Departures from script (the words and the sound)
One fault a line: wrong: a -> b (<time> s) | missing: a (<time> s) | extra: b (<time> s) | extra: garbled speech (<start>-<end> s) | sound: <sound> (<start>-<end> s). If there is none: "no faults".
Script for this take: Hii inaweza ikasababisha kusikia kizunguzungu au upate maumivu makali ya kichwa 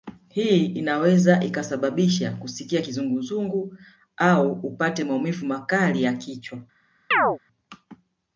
sound: chirp (7.1-7.4 s)